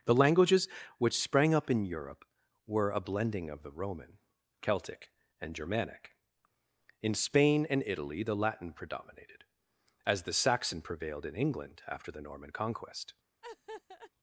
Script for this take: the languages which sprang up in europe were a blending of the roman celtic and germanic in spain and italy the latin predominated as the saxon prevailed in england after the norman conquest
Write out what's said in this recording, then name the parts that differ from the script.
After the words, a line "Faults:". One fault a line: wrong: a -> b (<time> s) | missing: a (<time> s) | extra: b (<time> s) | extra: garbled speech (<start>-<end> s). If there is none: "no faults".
the languages which sprang up in europe were a blending of the roman celtic and germanic in spain and italy the latin predominated as the saxon prevailed in england after the norman conquest
Faults:
no faults